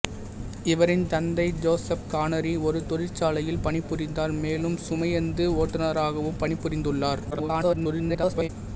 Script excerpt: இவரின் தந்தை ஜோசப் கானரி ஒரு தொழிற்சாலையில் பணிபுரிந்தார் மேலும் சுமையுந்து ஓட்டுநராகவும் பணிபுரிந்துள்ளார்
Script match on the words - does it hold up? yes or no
no